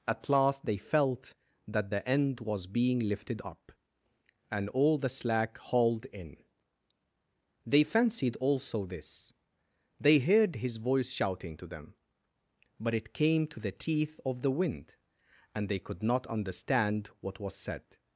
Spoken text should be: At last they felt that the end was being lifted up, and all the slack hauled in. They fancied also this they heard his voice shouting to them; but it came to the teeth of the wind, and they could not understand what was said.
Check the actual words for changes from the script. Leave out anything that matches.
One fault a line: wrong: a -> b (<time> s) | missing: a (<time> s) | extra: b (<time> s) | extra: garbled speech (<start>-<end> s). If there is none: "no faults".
no faults